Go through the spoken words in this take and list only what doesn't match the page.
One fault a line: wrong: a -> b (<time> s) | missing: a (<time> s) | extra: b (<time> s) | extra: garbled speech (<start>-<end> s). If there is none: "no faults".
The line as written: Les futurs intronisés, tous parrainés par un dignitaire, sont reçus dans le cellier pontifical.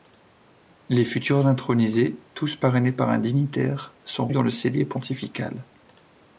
missing: reçus (4.3 s)